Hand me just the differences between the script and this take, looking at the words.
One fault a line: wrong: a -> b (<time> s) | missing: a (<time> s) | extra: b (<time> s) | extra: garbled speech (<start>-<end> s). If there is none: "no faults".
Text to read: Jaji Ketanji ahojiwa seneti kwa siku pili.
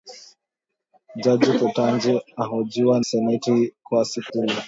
no faults